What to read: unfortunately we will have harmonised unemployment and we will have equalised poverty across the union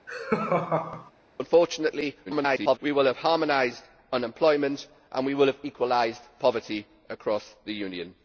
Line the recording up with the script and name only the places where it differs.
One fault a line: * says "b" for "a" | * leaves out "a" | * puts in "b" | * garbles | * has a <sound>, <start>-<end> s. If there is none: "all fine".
* has a laugh, 0.1-1.1 s
* garbles